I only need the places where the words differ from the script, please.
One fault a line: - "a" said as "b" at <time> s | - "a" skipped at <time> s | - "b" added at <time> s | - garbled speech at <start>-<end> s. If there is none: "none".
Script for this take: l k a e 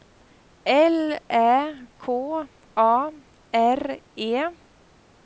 - "ä" added at 1.3 s
- "r" added at 3.5 s